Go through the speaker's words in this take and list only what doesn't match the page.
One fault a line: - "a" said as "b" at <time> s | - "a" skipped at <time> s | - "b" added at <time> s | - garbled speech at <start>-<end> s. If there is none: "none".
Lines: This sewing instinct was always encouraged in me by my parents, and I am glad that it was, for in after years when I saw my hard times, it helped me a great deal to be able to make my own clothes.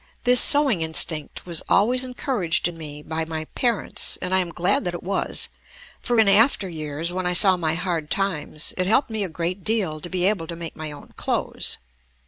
none